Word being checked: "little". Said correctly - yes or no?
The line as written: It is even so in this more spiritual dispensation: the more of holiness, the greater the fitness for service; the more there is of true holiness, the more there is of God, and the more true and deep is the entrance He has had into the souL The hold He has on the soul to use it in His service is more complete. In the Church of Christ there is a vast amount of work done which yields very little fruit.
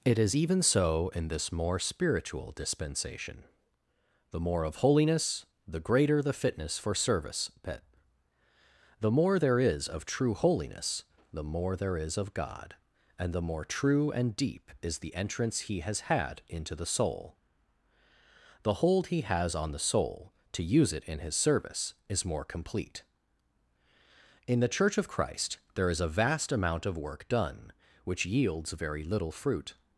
yes